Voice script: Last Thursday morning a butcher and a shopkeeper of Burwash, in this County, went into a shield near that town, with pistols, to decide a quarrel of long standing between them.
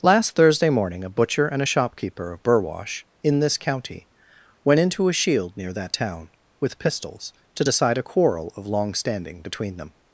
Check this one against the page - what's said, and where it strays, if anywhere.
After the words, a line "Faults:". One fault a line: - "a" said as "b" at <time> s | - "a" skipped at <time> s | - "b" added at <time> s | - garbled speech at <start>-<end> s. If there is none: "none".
Last Thursday morning a butcher and a shopkeeper of Burwash, in this County, went into a shield near that town, with pistols, to decide a quarrel of long standing between them.
Faults:
none